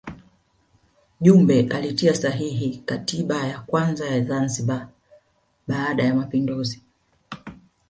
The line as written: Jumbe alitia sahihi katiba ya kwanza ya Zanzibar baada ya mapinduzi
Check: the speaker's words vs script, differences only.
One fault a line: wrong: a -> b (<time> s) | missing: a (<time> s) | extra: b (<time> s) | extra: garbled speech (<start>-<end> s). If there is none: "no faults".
no faults